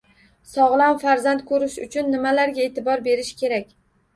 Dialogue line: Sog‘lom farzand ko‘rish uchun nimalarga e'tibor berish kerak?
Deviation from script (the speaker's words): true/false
false